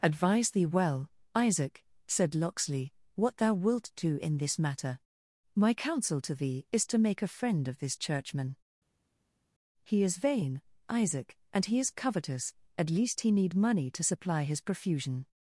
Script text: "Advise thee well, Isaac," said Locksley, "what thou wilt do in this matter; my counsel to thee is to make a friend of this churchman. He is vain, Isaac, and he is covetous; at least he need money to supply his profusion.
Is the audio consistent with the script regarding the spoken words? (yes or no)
yes